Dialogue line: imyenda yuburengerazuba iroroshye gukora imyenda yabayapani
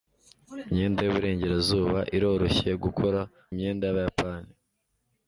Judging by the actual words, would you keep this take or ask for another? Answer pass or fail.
pass